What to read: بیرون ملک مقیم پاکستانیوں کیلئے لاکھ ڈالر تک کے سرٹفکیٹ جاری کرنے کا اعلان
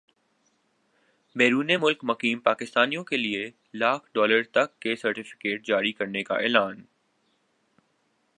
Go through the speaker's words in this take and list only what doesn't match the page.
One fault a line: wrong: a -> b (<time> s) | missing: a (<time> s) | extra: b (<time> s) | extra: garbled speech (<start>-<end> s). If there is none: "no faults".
no faults